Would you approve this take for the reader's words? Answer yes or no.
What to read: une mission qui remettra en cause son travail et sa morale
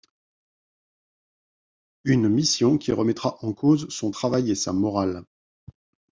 yes